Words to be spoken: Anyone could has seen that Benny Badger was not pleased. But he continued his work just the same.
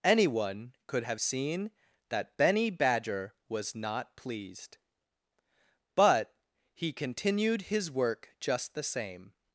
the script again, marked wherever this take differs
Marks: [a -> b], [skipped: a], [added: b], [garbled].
Anyone could [has -> have] seen that Benny Badger was not pleased. But he continued his work just the same.